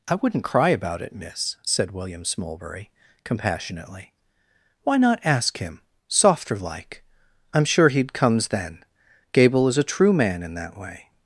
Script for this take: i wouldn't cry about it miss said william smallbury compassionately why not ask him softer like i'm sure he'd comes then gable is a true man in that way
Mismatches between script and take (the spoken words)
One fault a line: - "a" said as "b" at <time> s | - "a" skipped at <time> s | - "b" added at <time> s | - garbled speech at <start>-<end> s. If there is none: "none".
none